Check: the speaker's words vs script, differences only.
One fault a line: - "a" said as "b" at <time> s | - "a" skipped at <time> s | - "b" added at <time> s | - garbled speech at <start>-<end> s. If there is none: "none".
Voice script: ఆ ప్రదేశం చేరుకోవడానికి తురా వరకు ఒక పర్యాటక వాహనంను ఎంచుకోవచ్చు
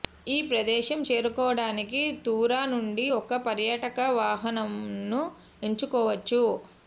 - "ఆ" said as "ఈ" at 0.3 s
- "వరకు" said as "నుండి" at 2.6 s